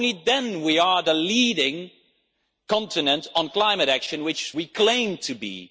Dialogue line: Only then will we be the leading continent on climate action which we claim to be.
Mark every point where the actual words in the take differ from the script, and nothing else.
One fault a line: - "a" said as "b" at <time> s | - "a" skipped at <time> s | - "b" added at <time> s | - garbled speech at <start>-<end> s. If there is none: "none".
none